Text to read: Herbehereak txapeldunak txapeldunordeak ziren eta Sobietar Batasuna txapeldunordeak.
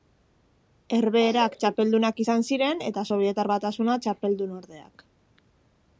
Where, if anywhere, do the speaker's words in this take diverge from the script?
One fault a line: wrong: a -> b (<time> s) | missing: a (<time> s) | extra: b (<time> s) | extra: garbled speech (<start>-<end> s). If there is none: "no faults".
wrong: txapeldunordeak -> izan (2.2 s)